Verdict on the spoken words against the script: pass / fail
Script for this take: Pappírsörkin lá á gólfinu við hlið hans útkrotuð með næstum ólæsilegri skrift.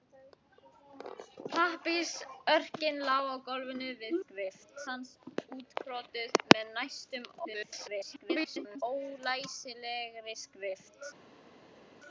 fail